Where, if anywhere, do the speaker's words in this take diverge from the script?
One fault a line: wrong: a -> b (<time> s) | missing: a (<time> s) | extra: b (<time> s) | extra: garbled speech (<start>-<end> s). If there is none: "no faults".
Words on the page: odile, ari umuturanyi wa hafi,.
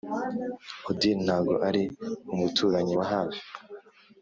extra: ntago (1.2 s)